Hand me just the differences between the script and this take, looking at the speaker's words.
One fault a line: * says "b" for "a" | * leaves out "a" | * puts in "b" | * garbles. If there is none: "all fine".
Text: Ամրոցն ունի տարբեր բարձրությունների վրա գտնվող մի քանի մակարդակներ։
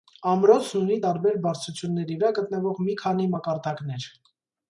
all fine